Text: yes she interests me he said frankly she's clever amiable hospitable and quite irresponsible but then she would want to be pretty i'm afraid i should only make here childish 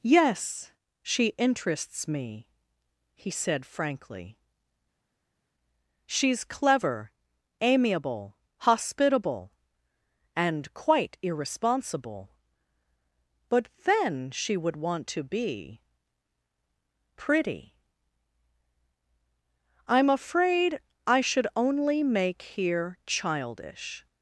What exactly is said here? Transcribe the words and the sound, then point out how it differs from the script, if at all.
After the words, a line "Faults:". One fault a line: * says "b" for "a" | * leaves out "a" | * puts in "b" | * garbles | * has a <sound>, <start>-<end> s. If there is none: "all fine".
yes she interests me he said frankly she's clever amiable hospitable and quite irresponsible but then she would want to be pretty i'm afraid i should only make here childish
Faults:
all fine